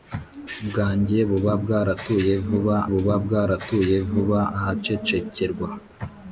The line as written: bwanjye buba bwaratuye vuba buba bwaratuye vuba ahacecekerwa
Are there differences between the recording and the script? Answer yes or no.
no